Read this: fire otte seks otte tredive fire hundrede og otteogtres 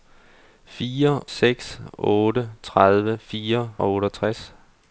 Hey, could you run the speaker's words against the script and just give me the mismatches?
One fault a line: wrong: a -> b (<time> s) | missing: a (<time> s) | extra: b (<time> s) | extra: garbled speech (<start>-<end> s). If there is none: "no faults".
missing: otte (1.2 s)
missing: hundrede (3.7 s)